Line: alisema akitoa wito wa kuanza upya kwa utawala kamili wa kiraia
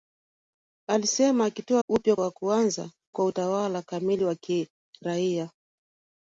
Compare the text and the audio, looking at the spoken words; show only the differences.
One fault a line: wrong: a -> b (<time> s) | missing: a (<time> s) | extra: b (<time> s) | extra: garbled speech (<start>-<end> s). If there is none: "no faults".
wrong: wito -> upya (1.9 s)
missing: upya (2.9 s)